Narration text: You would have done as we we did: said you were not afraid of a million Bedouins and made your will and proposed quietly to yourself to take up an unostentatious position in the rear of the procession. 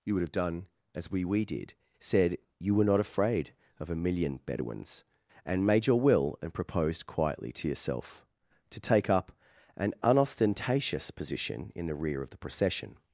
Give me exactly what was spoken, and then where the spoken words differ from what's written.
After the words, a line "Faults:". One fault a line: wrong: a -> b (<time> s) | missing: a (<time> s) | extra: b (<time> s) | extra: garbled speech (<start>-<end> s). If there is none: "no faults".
You would have done as we we did: said you were not afraid of a million Bedouins and made your will and proposed quietly to yourself to take up an unostentatious position in the rear of the procession.
Faults:
no faults